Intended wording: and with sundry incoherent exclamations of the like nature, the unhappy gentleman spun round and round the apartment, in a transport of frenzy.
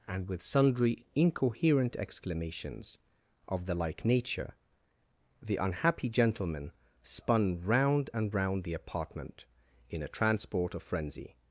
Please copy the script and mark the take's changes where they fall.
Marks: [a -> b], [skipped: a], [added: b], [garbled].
and with sundry incoherent exclamations of the like nature, the unhappy gentleman spun round and round the apartment, in a transport of frenzy.